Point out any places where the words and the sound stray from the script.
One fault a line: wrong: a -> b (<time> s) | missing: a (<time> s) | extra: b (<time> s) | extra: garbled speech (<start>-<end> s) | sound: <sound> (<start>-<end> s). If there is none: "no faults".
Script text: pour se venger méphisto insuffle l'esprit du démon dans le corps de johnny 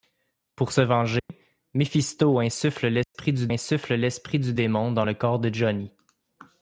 sound: dropout (1.2-1.3 s)
sound: dropout (3.0-3.1 s)
extra: insuffle l'esprit du (3.5 s)